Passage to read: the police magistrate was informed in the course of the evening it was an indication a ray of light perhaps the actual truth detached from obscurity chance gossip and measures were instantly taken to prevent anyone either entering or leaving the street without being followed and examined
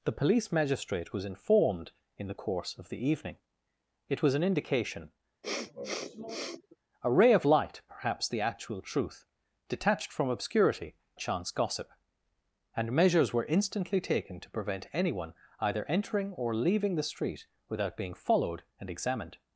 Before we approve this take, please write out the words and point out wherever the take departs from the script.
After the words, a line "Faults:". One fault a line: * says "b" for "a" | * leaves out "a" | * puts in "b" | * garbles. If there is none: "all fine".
the police magistrate was informed in the course of the evening it was an indication a ray of light perhaps the actual truth detached from obscurity chance gossip and measures were instantly taken to prevent anyone either entering or leaving the street without being followed and examined
Faults:
all fine